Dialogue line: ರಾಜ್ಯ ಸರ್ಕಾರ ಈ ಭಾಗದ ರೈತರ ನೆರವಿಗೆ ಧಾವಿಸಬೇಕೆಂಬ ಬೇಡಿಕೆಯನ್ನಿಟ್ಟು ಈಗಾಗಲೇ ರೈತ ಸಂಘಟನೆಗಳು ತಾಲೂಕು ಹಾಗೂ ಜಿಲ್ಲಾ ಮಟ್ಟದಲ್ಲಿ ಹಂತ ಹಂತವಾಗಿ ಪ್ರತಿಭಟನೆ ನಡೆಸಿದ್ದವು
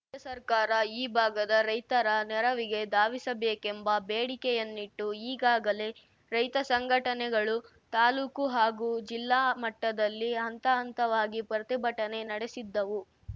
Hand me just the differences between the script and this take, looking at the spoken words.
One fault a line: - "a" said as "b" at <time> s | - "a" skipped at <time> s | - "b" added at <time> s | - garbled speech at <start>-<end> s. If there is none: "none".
none